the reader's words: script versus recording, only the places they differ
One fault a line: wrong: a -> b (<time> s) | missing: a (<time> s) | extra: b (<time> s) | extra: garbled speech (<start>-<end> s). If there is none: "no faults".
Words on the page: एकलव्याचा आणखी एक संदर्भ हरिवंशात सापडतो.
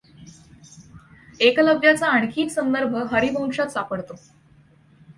no faults